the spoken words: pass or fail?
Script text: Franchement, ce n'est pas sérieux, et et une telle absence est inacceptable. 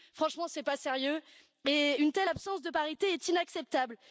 fail